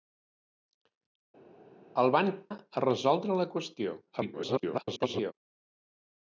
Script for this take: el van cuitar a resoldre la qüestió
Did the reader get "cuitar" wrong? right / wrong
wrong